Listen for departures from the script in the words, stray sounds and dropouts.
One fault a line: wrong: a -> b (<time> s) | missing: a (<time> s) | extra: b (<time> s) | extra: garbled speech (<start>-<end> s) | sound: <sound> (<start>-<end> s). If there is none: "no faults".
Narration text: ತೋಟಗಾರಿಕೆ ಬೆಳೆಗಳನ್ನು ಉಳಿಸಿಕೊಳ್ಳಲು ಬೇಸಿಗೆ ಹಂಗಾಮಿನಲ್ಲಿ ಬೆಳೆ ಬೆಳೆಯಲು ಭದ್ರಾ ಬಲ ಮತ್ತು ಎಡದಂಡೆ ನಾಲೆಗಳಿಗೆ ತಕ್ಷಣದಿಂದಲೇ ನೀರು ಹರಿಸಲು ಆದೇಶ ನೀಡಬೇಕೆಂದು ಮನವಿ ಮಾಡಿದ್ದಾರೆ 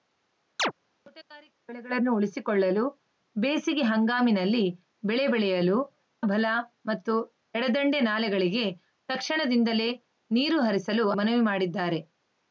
sound: chirp (0.6-0.7 s)
missing: ಭದ್ರಾ (5.8 s)
missing: ಆದೇಶ ನೀಡಬೇಕೆಂದು (11.1 s)